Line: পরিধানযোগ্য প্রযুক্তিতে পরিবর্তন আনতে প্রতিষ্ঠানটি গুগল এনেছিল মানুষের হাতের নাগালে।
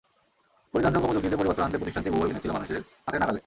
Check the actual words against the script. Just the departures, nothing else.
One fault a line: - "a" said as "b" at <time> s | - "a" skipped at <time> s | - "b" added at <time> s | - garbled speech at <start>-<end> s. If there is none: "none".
none